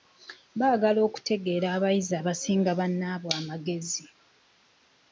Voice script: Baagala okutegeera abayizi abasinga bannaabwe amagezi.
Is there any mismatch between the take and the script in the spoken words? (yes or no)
no